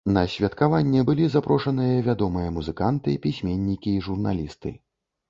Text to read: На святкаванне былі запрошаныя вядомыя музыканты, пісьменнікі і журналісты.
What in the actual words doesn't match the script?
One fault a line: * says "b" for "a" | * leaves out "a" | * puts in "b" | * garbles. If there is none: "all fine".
all fine